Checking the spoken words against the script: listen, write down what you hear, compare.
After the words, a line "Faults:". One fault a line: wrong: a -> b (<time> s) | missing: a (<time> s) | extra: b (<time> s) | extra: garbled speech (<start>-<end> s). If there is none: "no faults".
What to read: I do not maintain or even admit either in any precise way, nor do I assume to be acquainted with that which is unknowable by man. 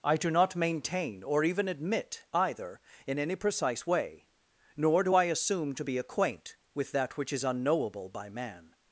I do not maintain or even admit either in any precise way, nor do I assume to be acquaint with that which is unknowable by man.
Faults:
wrong: acquainted -> acquaint (6.0 s)